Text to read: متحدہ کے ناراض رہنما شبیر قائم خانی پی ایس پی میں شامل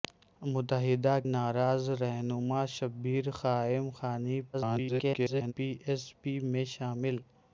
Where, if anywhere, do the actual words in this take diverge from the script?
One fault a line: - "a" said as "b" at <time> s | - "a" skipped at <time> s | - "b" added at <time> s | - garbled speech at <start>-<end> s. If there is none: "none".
- "کے" skipped at 1.2 s
- garbled speech at 4.5-5.5 s